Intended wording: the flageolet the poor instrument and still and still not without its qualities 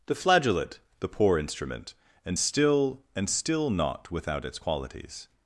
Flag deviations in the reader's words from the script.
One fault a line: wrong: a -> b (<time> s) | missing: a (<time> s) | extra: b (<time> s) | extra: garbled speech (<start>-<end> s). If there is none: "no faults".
no faults